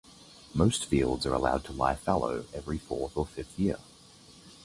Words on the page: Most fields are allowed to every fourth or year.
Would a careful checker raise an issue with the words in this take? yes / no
yes